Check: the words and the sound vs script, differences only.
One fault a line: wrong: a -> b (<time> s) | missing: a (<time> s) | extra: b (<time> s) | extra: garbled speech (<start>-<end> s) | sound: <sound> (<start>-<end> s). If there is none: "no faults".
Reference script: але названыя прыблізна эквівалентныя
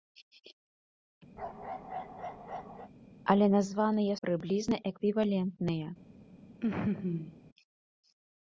sound: bark (1.4-2.9 s)
sound: laugh (6.6-7.4 s)